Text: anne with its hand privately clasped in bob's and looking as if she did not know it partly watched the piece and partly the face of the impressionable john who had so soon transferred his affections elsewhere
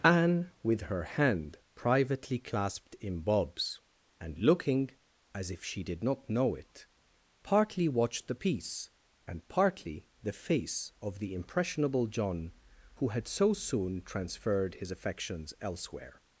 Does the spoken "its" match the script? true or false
false